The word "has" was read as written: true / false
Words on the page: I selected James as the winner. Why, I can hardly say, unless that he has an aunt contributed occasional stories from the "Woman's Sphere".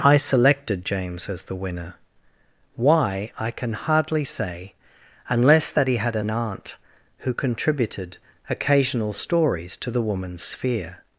false